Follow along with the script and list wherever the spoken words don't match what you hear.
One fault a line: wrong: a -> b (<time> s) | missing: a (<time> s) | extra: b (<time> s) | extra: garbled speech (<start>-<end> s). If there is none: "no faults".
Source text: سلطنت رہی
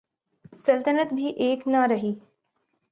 extra: بھی ایک نہ (1.1 s)